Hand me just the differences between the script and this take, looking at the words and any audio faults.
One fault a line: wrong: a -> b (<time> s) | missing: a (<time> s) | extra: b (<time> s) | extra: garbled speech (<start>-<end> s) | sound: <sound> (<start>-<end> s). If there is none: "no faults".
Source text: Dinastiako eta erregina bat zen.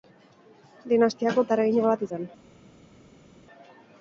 no faults